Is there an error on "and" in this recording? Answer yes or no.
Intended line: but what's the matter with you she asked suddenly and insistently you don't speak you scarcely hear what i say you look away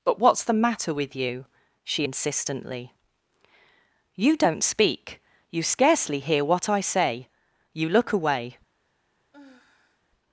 yes